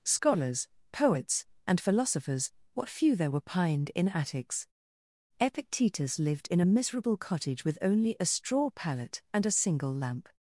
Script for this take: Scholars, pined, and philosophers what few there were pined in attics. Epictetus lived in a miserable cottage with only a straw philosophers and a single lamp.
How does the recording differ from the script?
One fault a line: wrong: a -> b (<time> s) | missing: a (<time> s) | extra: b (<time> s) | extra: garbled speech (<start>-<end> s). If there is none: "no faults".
wrong: pined -> poets (0.9 s)
wrong: philosophers -> pallet (8.7 s)